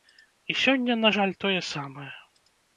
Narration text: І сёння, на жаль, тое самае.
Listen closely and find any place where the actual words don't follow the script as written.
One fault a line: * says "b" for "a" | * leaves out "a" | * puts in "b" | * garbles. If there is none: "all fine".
all fine